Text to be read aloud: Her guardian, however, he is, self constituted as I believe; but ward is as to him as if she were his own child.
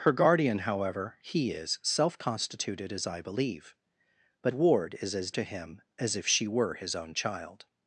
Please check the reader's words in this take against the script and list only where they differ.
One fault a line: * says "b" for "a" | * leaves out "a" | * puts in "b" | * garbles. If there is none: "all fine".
all fine